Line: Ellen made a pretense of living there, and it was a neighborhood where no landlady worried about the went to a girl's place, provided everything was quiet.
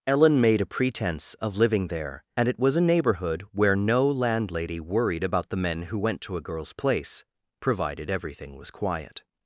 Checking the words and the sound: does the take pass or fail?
fail